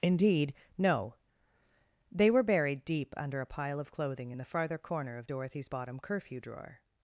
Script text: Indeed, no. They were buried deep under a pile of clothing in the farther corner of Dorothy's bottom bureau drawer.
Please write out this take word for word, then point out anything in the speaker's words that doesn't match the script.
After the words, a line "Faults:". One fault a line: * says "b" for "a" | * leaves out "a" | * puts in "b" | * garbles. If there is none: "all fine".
Indeed, no. They were buried deep under a pile of clothing in the farther corner of Dorothy's bottom curfew drawer.
Faults:
* says "curfew" for "bureau"